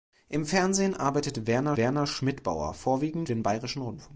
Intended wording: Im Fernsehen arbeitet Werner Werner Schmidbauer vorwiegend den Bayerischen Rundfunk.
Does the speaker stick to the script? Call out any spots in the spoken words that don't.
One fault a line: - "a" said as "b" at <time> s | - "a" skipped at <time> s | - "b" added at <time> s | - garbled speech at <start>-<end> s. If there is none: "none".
none